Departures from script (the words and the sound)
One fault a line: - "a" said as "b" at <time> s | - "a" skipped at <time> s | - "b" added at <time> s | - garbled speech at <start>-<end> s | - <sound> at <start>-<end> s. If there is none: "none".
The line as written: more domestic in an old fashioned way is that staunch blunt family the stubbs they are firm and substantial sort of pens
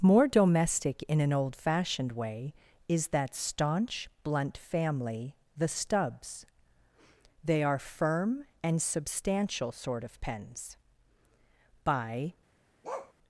- "by" added at 11.8 s
- bark at 12.8-13.1 s